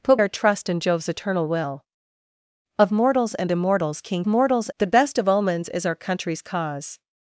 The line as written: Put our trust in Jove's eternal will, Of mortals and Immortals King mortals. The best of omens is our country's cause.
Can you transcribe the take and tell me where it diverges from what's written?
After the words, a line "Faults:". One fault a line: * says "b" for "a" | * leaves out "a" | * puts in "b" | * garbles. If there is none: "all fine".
Put our trust in Jove's eternal will, Of mortals and Immortals King mortals. The best of omens is our country's cause.
Faults:
all fine